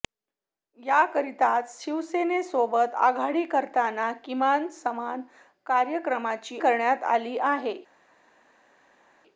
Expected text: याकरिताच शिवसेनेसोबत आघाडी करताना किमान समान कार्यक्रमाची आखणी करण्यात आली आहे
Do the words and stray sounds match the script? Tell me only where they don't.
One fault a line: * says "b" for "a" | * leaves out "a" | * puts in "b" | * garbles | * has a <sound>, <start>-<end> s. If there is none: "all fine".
* leaves out "आखणी"